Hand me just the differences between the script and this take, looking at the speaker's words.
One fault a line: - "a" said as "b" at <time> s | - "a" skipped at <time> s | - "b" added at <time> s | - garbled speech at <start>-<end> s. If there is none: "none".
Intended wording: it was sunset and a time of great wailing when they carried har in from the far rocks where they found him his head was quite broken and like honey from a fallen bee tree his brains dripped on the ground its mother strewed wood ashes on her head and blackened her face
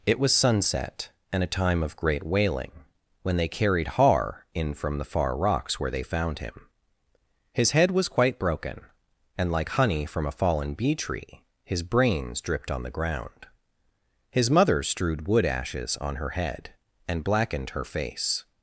- "its" said as "his" at 14.3 s